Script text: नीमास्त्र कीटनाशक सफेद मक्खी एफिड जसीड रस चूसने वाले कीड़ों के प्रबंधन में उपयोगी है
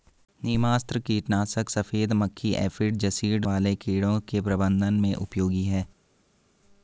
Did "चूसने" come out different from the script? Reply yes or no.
yes